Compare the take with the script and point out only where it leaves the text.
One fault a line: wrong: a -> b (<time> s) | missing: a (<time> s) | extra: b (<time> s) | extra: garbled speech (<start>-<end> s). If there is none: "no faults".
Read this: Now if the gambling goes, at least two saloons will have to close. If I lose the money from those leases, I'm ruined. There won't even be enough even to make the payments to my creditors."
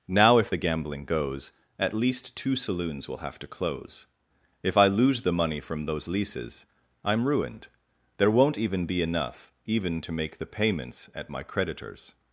wrong: to -> at (11.1 s)